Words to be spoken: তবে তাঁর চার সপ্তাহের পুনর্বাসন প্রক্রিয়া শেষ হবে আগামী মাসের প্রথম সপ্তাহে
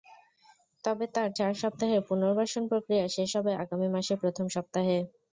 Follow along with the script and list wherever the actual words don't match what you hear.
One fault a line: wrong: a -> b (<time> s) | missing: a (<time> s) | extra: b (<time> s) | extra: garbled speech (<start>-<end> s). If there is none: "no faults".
no faults